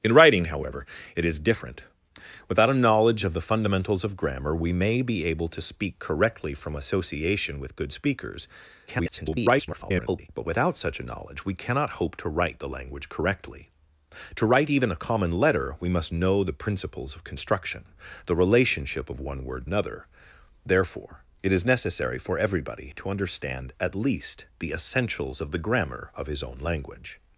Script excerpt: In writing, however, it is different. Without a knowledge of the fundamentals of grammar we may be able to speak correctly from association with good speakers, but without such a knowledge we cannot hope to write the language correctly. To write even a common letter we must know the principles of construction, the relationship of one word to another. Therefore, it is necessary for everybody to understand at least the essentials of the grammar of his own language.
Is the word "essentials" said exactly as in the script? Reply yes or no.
yes